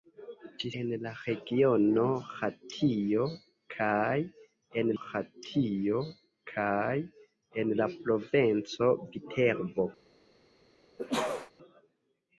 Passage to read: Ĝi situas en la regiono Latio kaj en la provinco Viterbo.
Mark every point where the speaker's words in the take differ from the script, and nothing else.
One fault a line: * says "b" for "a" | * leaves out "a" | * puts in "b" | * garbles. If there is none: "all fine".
* leaves out "situas"
* puts in "Latio kaj en"